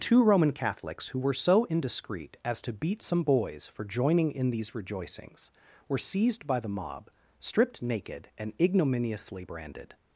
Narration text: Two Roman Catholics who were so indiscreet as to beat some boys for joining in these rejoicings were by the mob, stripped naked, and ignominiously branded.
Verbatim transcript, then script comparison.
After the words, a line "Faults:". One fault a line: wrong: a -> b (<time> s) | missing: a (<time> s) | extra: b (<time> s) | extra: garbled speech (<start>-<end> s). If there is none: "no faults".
Two Roman Catholics who were so indiscreet as to beat some boys for joining in these rejoicings were seized by the mob, stripped naked, and ignominiously branded.
Faults:
extra: seized (6.0 s)